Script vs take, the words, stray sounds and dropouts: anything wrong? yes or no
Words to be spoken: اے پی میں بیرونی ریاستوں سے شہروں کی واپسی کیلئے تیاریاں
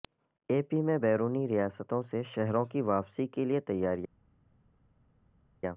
no